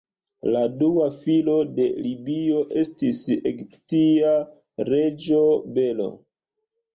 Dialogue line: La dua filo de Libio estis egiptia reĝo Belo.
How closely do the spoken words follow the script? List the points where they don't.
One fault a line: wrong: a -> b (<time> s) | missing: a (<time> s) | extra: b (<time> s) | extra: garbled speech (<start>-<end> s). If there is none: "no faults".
no faults